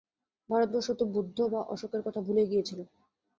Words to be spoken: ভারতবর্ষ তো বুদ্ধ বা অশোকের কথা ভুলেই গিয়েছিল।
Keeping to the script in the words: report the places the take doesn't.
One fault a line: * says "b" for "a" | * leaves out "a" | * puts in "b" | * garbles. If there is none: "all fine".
all fine